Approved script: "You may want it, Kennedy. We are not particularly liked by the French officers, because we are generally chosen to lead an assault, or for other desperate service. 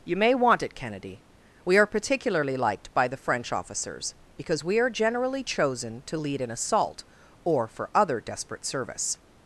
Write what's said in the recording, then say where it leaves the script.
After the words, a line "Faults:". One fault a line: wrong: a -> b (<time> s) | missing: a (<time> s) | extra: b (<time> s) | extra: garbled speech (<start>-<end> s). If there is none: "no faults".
"You may want it, Kennedy. We are particularly liked by the French officers, because we are generally chosen to lead an assault, or for other desperate service.
Faults:
missing: not (1.9 s)